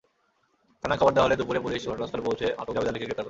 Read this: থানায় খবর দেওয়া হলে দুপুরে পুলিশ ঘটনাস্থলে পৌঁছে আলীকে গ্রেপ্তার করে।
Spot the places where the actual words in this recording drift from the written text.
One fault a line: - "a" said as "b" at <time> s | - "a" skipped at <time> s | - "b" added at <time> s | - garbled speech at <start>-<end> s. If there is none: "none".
- "আটক জাবেদ" added at 2.6 s